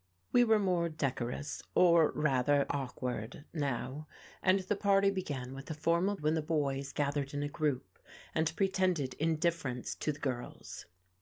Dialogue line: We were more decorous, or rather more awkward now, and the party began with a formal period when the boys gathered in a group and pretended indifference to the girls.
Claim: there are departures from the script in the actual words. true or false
true